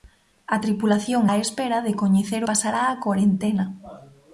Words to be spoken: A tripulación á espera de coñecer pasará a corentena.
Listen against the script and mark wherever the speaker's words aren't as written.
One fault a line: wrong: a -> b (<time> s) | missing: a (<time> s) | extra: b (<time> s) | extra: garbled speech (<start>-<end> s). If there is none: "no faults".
no faults